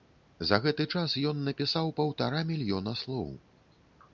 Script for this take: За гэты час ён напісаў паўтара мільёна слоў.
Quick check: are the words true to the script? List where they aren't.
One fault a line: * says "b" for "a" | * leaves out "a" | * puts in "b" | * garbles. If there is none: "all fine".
all fine